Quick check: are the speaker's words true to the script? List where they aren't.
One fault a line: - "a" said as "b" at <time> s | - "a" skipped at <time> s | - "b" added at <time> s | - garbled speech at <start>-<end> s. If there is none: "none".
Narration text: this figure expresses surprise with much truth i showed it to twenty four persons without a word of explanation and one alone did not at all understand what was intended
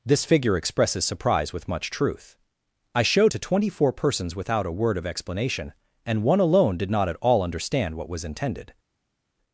- "it" skipped at 3.3 s